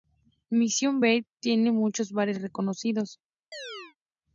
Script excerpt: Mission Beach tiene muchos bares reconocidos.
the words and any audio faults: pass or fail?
fail